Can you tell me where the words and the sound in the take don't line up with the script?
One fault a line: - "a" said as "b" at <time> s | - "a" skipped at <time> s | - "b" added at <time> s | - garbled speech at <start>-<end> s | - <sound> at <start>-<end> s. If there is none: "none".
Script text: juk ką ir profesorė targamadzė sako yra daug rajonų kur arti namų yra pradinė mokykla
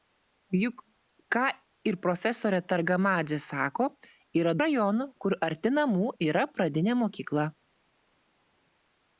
- "daug" skipped at 4.5 s